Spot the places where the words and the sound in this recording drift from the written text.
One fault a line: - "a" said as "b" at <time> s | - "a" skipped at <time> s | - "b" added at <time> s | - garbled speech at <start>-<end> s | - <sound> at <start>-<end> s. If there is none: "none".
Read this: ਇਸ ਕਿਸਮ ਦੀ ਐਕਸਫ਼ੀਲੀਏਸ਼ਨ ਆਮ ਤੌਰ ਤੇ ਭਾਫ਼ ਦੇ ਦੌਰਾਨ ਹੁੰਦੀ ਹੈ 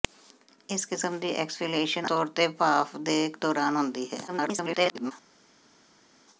- "ਆਮ" skipped at 2.1 s
- garbled speech at 4.3-5.1 s